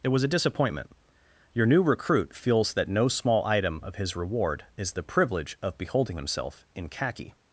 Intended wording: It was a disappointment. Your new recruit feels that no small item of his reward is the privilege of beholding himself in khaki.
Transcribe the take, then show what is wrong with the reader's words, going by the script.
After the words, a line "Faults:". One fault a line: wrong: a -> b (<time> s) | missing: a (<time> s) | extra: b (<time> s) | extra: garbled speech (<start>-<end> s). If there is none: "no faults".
It was a disappointment. Your new recruit feels that no small item of his reward is the privilege of beholding himself in khaki.
Faults:
no faults